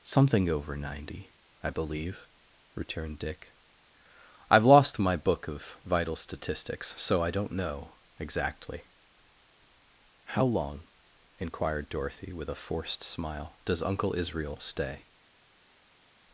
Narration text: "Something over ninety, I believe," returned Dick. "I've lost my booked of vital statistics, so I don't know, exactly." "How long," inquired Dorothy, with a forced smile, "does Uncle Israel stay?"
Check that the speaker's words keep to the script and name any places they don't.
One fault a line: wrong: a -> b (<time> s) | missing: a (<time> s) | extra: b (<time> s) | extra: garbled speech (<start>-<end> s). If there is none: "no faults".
wrong: booked -> book (5.2 s)